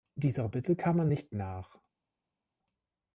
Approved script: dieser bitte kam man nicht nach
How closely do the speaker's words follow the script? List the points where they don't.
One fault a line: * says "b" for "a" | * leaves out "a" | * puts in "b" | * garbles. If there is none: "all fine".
all fine